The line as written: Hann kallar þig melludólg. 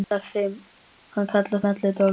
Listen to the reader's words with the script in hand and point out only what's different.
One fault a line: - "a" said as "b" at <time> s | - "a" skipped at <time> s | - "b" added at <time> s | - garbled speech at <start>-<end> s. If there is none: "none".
- "þig" skipped at 1.6 s